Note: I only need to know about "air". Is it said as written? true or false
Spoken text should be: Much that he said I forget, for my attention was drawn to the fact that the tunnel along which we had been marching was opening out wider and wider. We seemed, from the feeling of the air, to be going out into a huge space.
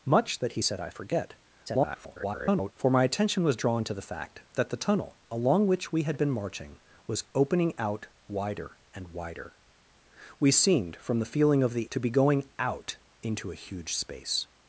false